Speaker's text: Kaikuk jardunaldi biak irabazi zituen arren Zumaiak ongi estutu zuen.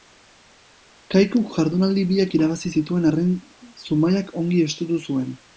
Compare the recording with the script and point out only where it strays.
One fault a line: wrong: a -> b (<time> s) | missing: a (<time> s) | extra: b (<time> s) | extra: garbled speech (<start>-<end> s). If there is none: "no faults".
no faults